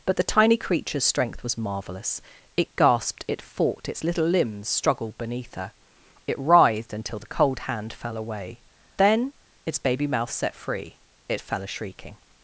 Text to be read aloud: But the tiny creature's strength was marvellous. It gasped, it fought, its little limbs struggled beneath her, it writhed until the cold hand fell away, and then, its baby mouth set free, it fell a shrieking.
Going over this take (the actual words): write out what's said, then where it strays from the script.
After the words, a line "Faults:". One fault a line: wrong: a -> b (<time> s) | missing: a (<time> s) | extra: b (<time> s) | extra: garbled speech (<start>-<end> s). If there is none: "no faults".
But the tiny creature's strength was marvellous. It gasped, it fought, its little limbs struggled beneath her, it writhed until the cold hand fell away, then, its baby mouth set free, it fell a shrieking.
Faults:
missing: and (8.6 s)